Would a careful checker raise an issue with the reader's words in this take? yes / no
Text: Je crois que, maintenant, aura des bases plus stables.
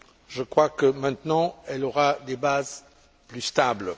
yes